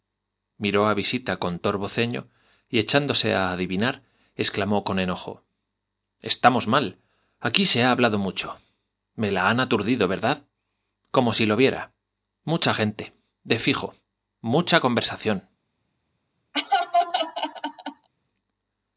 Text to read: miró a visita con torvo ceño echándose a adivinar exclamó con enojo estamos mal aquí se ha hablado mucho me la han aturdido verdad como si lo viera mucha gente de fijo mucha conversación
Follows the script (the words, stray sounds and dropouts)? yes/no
no